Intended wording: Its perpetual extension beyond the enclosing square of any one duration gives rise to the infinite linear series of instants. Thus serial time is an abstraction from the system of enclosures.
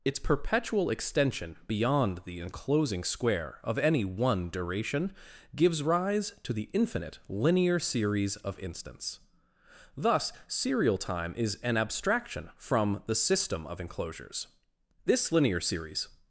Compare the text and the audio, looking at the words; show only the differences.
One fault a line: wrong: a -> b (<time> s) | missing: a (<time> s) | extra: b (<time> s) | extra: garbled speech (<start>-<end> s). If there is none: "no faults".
extra: This linear series (15.1 s)